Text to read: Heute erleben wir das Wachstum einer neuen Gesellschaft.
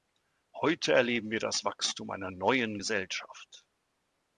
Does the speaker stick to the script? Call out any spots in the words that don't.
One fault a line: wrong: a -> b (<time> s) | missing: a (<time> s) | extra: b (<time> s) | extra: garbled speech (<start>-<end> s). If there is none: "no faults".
no faults